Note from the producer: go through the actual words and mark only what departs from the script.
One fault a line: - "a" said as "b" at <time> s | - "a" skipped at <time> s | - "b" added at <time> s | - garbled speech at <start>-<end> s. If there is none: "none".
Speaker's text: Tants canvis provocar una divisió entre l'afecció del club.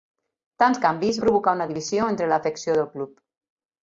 none